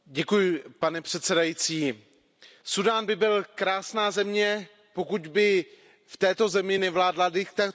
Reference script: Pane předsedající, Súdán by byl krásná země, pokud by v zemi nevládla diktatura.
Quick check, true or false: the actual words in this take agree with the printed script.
false